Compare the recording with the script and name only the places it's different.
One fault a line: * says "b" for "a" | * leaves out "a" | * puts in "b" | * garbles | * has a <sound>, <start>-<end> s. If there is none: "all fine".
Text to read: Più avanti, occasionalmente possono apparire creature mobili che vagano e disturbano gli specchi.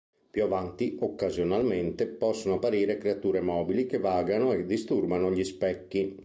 all fine